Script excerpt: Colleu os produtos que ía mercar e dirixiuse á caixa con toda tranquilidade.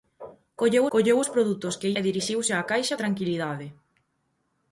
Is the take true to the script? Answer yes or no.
no